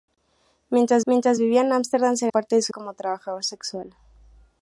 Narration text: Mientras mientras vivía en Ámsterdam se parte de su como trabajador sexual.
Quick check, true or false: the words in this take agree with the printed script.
true